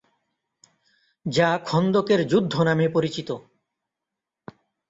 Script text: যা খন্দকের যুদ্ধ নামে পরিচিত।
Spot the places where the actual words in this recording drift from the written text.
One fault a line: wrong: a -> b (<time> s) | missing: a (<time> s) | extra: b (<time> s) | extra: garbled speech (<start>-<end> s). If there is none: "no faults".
no faults